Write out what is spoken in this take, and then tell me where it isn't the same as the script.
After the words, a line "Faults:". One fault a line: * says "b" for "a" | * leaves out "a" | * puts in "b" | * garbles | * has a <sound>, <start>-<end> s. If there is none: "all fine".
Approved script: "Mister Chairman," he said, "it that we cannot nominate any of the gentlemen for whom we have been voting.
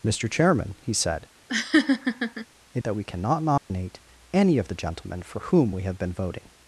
"Mister Chairman," he said, "it that we cannot nominate any of the gentlemen for whom we have been voting.
Faults:
* has a laugh, 1.5-2.5 s
* has a dropout, 3.6-3.7 s